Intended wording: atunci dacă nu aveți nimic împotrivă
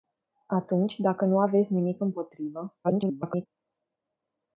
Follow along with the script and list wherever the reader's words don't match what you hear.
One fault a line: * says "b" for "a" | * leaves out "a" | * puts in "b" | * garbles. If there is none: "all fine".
* garbles